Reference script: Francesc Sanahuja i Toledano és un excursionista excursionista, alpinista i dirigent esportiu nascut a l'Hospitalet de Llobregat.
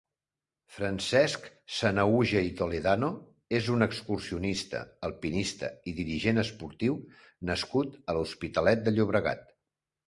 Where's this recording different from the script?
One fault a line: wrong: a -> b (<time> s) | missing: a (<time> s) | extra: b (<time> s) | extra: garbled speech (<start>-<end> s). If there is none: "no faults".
missing: excursionista (4.8 s)